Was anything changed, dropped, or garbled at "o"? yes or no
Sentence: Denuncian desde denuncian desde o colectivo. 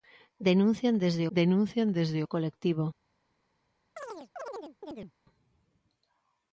no